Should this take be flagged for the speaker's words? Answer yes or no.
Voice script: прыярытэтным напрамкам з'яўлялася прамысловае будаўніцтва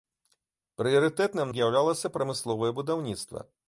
yes